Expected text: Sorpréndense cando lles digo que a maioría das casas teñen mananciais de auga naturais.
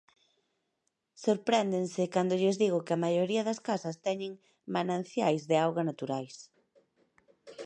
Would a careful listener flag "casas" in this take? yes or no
no